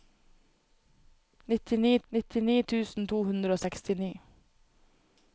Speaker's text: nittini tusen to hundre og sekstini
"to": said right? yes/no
yes